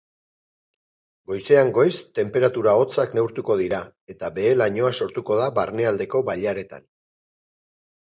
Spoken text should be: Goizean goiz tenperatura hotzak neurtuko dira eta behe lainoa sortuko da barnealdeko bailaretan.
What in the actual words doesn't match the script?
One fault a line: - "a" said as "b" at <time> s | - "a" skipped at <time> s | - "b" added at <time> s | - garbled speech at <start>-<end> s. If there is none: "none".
none